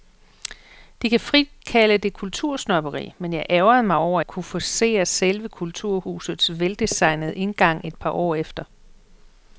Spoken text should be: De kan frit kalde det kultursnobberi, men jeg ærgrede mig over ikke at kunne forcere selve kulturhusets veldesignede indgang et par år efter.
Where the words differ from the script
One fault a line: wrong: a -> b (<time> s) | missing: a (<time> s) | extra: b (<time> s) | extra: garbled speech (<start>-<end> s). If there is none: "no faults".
missing: ikke (4.2 s)